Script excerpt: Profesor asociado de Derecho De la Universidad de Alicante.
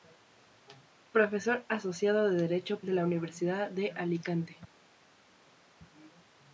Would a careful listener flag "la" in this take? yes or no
no